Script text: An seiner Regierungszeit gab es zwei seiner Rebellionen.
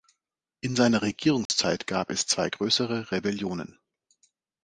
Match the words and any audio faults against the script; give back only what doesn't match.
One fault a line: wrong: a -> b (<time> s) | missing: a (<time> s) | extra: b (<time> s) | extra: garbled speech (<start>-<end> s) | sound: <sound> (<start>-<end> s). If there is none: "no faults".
wrong: An -> In (0.6 s)
sound: dropout (1.5-1.5 s)
wrong: seiner -> größere (2.5 s)